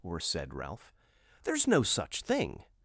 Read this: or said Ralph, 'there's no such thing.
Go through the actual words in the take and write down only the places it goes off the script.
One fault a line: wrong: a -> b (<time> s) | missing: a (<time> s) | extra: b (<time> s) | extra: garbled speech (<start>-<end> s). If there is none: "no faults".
no faults